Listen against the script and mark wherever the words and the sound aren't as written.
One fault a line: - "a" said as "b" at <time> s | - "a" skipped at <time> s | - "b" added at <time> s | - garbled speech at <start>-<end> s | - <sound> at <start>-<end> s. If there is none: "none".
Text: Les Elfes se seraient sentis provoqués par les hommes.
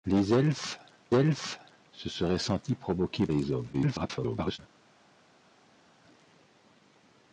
- "Elfes" added at 1.1 s
- "par" skipped at 3.3 s
- garbled speech at 3.7-4.6 s